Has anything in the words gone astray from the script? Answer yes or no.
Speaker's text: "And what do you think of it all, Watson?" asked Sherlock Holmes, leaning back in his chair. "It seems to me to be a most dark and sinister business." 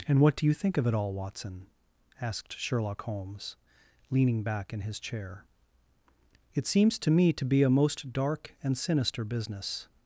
no